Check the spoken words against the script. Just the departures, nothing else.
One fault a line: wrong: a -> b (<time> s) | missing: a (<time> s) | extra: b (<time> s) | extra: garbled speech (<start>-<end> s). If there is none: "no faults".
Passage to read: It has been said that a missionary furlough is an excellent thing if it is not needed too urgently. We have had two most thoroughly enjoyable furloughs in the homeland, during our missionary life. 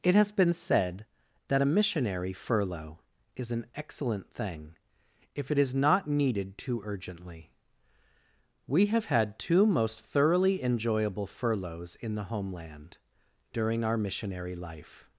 no faults